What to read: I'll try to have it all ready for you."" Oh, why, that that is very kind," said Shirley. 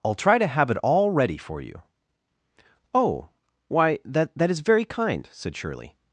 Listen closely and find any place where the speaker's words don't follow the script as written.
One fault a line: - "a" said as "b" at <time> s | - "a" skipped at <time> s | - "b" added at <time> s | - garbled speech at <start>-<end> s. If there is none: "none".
none